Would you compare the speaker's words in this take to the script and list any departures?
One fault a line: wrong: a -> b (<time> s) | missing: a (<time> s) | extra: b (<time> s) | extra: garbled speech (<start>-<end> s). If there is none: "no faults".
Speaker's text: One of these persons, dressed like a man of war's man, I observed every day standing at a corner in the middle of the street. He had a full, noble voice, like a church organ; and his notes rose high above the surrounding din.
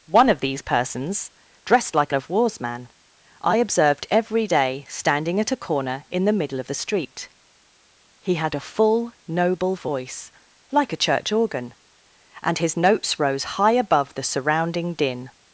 missing: a man (2.1 s)